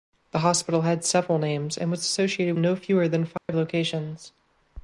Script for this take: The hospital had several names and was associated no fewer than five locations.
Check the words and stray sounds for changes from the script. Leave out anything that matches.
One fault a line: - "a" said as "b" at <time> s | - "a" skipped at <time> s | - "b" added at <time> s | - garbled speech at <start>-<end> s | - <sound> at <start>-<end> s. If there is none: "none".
- dropout at 3.4-3.5 s